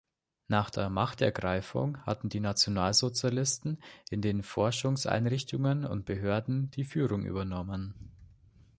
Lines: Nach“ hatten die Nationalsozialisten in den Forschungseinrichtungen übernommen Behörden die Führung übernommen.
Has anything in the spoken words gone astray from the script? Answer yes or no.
yes